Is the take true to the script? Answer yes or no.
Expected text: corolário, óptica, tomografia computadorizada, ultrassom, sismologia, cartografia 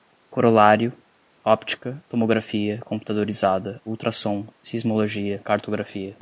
yes